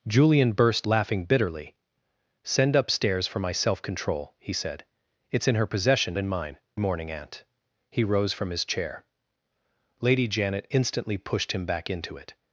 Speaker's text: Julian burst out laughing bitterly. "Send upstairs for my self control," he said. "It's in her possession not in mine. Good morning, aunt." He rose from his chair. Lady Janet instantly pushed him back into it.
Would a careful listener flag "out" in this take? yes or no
yes